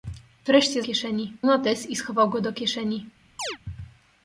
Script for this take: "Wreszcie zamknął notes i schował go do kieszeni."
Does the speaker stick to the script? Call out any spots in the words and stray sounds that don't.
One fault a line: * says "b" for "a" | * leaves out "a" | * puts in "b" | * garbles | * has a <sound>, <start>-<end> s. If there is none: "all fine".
* says "kieszeni" for "zamknął"
* has a chirp, 3.4-3.6 s